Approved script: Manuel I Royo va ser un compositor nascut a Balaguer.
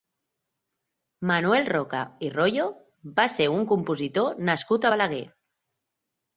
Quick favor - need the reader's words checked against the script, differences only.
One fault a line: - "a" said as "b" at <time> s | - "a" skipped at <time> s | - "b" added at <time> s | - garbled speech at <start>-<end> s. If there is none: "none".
- "Roca" added at 1.7 s